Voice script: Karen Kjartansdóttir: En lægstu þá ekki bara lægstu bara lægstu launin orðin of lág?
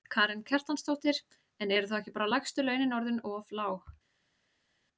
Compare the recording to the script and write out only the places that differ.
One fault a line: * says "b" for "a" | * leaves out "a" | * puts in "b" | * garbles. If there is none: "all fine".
* says "eru" for "lægstu"
* leaves out "bara lægstu"